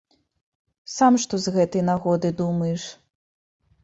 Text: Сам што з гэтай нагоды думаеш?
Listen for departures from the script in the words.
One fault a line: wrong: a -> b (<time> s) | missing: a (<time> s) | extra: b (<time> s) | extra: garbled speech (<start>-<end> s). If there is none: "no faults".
no faults